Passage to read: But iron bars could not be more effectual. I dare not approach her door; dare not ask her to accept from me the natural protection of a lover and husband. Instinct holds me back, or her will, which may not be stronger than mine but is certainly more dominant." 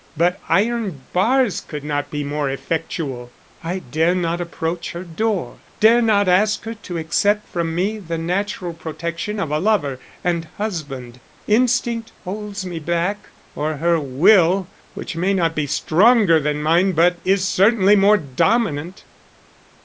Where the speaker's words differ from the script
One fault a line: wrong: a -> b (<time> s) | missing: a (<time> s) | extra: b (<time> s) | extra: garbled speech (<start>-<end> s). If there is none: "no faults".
no faults